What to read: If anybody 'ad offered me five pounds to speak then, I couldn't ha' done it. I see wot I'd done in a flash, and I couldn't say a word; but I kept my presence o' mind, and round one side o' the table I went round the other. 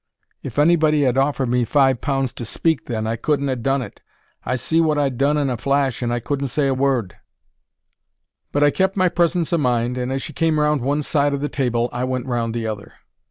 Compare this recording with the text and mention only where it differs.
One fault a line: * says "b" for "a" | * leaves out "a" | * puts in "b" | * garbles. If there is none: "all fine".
* puts in "as she came"